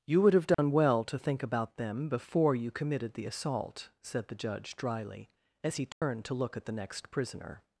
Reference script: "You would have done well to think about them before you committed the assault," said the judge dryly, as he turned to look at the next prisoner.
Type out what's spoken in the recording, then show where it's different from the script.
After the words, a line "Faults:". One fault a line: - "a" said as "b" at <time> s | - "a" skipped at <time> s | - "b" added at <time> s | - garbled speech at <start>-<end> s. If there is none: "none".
"You would have done well to think about them before you committed the assault," said the judge dryly, as he turned to look at the next prisoner.
Faults:
none